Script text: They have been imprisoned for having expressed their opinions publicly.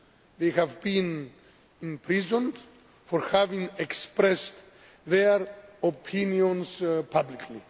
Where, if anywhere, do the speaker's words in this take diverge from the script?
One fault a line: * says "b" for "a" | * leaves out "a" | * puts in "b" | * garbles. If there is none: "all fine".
all fine